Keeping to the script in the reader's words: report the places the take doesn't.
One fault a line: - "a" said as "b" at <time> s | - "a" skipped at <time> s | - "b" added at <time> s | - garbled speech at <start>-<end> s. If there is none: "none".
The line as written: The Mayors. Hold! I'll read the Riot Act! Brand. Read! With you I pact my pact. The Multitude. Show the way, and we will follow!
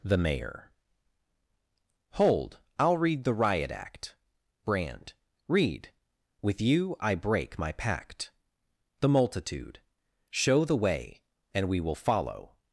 - "Mayors" said as "Mayor" at 0.2 s
- "pact" said as "break" at 7.1 s